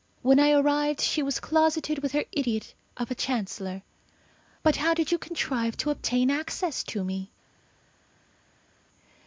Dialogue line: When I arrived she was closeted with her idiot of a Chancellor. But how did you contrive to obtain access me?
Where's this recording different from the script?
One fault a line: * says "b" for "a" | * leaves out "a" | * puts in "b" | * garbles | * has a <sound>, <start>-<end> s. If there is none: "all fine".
* puts in "to"